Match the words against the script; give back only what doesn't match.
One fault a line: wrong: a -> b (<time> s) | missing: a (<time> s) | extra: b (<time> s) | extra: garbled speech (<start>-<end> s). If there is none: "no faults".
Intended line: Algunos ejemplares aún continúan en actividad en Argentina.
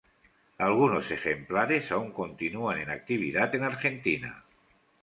no faults